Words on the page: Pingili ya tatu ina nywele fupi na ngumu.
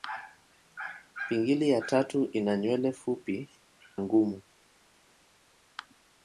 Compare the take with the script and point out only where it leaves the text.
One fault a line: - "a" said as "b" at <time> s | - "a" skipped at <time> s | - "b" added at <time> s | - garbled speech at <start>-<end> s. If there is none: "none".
- "na" skipped at 3.5 s